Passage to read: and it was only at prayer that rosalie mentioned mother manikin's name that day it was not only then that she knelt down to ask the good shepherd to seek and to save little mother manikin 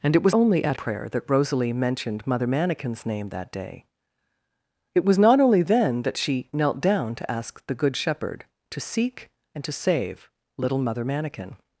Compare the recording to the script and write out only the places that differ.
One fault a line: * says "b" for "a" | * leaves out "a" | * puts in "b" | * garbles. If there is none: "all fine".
all fine